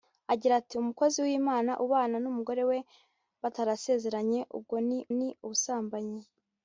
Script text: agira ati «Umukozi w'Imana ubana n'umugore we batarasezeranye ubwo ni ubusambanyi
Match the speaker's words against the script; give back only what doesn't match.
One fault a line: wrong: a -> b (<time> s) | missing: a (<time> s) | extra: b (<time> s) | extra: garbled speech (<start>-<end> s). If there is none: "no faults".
extra: ni (5.2 s)